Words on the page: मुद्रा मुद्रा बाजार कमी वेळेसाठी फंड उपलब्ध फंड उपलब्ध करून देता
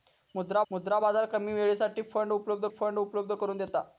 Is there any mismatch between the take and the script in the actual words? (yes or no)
no